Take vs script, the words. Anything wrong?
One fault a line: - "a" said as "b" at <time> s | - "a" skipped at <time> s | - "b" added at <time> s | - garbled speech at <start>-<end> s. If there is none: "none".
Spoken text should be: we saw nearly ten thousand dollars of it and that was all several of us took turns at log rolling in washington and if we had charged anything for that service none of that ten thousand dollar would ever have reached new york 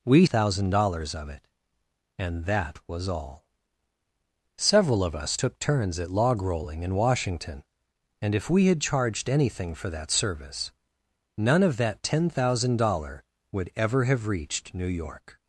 - "saw nearly ten" skipped at 0.2 s